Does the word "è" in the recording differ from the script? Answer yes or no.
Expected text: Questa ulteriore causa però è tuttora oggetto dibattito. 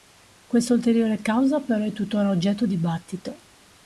no